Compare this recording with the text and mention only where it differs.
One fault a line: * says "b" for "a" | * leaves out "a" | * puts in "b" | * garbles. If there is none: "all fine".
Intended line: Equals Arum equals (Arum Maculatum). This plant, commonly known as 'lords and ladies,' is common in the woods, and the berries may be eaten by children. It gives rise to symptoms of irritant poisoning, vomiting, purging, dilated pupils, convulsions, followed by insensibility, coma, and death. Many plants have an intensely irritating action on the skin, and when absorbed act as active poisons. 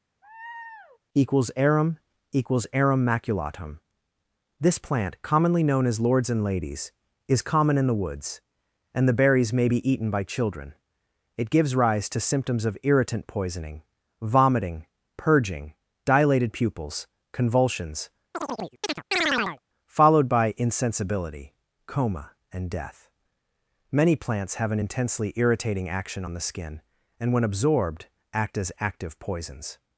all fine